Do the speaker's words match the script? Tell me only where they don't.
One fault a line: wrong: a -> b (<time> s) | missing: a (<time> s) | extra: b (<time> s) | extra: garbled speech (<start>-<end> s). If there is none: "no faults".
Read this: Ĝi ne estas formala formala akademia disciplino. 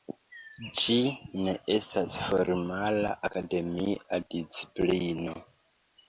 missing: formala (3.1 s)